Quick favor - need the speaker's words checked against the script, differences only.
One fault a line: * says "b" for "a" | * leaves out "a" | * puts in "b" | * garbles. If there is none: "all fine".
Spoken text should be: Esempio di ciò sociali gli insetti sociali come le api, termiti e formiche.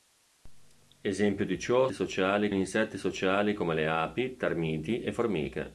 all fine